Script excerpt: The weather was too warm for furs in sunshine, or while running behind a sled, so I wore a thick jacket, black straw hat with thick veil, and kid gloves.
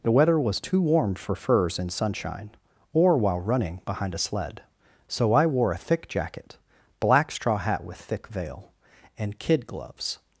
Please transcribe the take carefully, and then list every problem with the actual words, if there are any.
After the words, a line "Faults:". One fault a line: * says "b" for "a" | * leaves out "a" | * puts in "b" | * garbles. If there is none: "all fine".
The weather was too warm for furs in sunshine, or while running behind a sled, so I wore a thick jacket, black straw hat with thick veil, and kid gloves.
Faults:
all fine